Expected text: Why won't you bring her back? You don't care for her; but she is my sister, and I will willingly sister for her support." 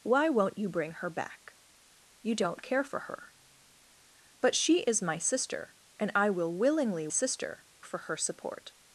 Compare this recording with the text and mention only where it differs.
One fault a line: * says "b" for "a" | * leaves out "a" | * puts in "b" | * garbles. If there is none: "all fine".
all fine